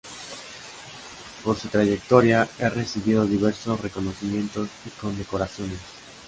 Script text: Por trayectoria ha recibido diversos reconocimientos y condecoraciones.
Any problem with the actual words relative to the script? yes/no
yes